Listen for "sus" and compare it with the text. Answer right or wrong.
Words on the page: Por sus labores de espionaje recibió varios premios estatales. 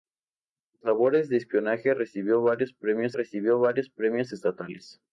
wrong